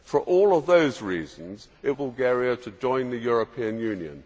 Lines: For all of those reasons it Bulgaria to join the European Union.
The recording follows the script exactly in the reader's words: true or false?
true